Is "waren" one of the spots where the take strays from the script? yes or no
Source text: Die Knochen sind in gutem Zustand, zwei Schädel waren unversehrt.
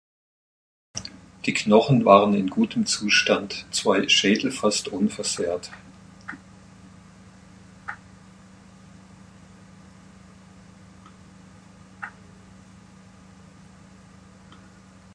yes